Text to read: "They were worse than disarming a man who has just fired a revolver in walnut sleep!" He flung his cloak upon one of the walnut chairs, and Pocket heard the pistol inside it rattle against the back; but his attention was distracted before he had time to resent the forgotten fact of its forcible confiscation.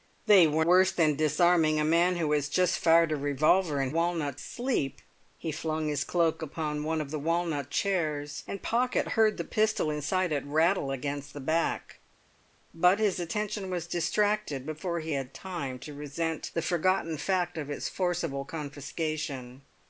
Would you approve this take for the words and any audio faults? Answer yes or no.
yes